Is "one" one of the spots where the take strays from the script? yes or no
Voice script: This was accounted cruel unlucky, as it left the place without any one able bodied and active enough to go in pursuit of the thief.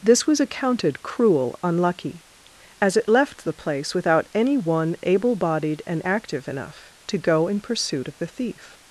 no